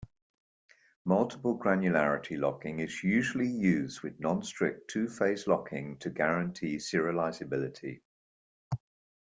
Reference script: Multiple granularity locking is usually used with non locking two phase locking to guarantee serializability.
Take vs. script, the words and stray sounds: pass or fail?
fail